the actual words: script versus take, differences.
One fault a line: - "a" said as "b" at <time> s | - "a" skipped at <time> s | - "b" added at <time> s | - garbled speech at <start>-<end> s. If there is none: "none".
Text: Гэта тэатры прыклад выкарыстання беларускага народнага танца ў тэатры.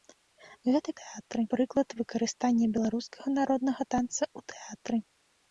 none